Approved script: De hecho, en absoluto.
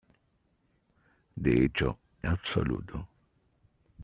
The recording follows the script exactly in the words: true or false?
false